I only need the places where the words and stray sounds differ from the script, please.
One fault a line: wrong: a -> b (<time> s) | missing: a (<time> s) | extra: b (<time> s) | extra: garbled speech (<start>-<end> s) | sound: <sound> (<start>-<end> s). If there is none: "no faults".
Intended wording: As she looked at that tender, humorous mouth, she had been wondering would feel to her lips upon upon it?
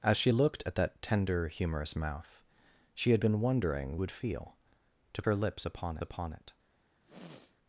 sound: throat clearing (7.0-7.6 s)